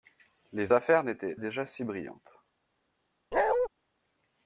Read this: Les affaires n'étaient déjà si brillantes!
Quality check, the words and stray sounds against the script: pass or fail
fail